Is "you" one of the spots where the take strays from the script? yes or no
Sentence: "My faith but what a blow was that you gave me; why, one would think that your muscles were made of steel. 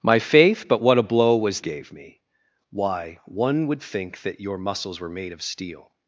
yes